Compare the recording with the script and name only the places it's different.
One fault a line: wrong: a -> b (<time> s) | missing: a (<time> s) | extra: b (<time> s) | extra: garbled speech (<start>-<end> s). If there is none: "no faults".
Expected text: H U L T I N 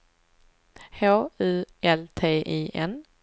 no faults